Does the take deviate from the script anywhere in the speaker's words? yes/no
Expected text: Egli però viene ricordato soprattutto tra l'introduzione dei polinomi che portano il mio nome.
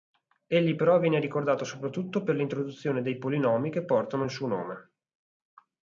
yes